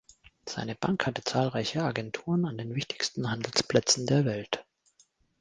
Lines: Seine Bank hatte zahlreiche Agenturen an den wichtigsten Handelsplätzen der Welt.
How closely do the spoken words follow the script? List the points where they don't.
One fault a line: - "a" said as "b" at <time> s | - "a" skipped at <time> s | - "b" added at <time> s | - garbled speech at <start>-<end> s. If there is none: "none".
none